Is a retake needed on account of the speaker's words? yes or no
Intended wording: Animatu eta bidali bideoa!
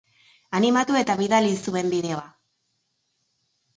yes